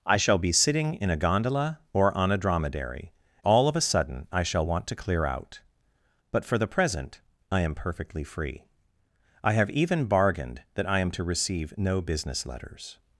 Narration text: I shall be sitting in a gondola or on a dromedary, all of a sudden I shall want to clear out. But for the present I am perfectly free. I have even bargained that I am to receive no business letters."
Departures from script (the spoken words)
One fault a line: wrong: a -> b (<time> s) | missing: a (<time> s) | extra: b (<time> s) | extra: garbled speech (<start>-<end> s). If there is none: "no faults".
no faults